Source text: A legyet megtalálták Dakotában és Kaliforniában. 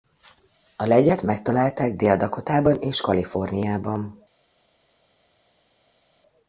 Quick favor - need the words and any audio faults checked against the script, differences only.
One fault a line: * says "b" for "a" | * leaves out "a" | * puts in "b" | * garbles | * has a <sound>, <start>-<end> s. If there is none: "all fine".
* puts in "Dél"